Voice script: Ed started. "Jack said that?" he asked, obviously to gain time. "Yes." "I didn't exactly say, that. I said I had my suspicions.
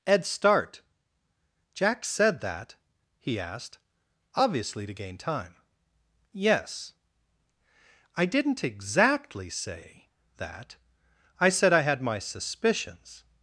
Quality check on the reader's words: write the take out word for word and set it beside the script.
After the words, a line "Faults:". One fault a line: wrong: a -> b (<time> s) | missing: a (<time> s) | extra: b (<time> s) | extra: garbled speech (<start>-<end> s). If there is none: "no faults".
Ed start. "Jack said that?" he asked, obviously to gain time. "Yes." "I didn't exactly say, that. I said I had my suspicions.
Faults:
wrong: started -> start (0.2 s)